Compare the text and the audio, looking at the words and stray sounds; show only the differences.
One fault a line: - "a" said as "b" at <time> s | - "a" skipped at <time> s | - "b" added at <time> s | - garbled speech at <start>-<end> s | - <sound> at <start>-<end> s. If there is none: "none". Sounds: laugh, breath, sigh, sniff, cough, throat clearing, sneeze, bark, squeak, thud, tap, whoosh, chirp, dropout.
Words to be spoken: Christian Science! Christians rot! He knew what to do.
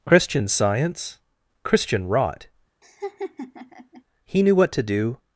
- "Christians" said as "Christian" at 1.6 s
- laugh at 2.8-4.0 s